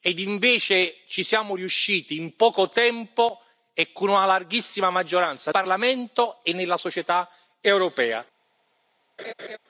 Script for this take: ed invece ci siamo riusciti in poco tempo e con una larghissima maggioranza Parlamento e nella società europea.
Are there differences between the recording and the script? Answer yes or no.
no